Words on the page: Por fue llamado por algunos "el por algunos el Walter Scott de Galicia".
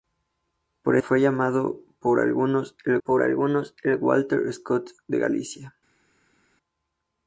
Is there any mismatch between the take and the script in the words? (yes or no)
no